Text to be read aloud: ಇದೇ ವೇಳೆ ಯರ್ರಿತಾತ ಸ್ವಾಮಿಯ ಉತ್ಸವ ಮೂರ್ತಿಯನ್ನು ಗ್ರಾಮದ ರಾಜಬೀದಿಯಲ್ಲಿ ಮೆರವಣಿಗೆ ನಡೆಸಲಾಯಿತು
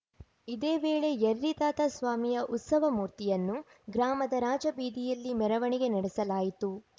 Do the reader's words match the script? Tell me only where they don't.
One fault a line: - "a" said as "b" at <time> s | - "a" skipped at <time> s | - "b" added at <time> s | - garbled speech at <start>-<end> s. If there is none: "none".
none